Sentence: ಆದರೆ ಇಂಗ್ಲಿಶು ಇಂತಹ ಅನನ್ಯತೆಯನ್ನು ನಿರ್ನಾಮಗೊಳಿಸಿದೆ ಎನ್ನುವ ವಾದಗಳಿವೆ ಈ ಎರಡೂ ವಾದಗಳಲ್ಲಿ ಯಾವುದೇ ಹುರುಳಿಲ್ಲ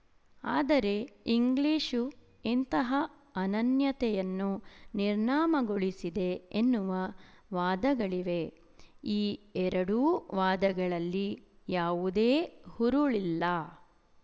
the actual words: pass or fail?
pass